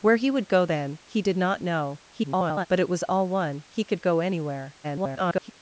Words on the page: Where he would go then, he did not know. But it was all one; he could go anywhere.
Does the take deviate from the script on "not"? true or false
false